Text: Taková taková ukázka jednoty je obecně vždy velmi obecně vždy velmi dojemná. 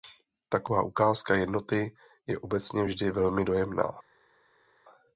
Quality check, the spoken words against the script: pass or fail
fail